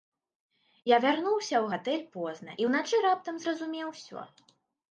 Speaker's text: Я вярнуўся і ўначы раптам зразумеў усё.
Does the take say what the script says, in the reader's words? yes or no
no